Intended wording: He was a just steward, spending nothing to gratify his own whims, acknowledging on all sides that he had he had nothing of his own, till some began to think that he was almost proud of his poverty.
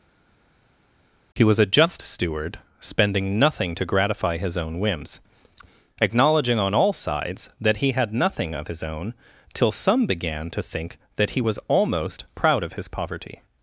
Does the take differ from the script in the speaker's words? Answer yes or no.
yes